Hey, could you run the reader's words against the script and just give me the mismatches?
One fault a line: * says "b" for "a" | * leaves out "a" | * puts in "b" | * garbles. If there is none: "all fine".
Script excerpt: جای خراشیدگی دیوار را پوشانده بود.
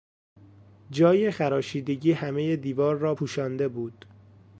* puts in "همهی"